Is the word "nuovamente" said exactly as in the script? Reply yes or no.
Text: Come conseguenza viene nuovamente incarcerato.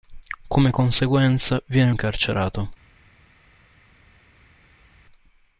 no